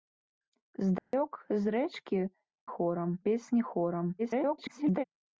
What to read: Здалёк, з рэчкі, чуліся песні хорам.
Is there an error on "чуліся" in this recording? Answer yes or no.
yes